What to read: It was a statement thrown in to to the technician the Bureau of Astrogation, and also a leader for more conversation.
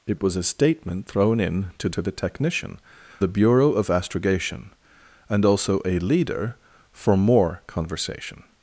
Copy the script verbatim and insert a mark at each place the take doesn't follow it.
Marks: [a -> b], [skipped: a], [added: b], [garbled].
It was a statement thrown in to to the technician the Bureau of Astrogation, and also a leader for more conversation.